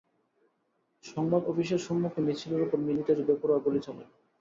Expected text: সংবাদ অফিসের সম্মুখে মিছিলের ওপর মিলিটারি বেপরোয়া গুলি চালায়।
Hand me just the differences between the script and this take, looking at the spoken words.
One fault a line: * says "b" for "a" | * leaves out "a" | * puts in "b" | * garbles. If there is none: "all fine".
all fine